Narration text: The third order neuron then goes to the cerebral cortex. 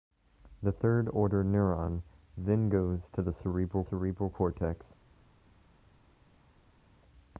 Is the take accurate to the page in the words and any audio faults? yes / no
no